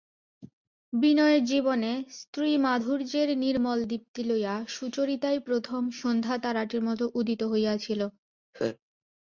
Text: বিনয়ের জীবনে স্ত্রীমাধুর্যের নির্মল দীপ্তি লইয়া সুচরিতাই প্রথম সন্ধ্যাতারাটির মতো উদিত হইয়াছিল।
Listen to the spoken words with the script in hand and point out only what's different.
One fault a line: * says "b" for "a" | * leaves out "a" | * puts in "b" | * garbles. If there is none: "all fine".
all fine